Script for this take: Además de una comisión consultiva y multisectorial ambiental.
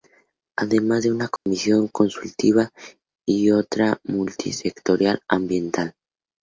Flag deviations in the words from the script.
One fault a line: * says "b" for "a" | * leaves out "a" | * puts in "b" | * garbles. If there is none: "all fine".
* puts in "otra"